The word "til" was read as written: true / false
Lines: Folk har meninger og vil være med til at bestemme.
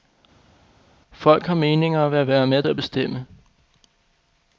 false